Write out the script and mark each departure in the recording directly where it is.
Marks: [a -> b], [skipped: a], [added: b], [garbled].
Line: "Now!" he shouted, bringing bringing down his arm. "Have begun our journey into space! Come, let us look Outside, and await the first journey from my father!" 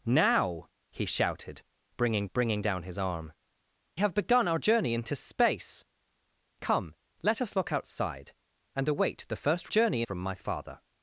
"Now!" he shouted, bringing bringing down his arm. "Have begun our journey into space! Come, let us look Outside, and await the first journey from my father!"